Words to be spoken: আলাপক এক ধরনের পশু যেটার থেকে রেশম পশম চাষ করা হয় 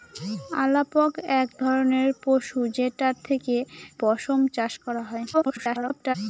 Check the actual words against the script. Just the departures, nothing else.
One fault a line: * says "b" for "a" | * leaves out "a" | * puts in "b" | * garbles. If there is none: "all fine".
* leaves out "রেশম"
* garbles